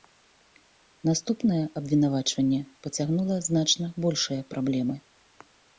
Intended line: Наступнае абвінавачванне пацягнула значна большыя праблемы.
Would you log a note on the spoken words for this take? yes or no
no